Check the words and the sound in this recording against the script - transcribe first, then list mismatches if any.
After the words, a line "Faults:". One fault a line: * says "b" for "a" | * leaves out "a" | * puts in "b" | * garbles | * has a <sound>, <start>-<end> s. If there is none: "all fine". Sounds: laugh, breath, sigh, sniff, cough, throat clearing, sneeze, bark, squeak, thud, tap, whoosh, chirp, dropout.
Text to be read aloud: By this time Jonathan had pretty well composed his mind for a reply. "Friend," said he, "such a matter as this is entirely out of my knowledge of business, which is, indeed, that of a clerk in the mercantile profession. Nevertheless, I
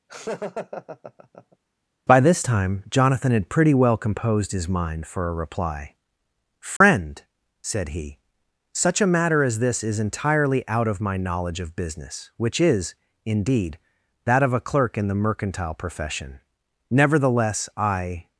By this time Jonathan had pretty well composed his mind for a reply. "Friend," said he, "such a matter as this is entirely out of my knowledge of business, which is, indeed, that of a clerk in the mercantile profession. Nevertheless, I
Faults:
* has a laugh, 0.1-1.6 s
* has a dropout, 6.8-6.8 s